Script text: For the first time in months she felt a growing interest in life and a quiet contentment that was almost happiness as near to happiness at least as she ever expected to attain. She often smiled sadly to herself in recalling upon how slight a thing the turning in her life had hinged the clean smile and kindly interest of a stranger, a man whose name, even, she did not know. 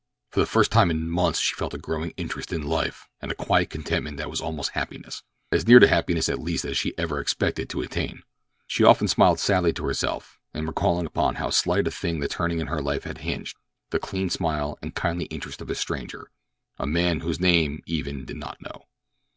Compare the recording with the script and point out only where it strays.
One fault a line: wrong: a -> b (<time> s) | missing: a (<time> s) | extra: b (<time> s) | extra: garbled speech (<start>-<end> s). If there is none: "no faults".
missing: she (18.2 s)